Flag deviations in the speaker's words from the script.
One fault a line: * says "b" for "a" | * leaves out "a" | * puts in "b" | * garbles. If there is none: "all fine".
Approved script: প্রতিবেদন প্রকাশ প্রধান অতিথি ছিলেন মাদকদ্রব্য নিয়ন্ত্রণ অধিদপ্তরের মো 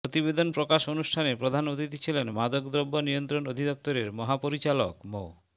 * puts in "অনুষ্ঠানে"
* puts in "মহাপরিচালক"